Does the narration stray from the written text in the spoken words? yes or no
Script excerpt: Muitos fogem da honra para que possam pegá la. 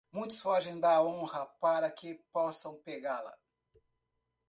no